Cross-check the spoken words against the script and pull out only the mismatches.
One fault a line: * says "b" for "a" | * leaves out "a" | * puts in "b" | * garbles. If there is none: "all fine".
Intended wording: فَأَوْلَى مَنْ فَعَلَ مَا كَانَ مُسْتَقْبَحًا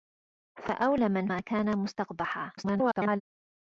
* leaves out "فَعَلَ"
* garbles